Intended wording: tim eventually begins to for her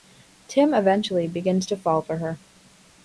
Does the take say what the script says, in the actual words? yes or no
no